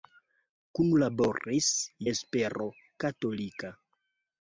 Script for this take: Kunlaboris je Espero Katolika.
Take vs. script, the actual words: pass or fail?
fail